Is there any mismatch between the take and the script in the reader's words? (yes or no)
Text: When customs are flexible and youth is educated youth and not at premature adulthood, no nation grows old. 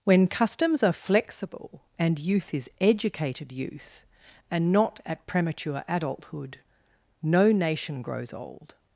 no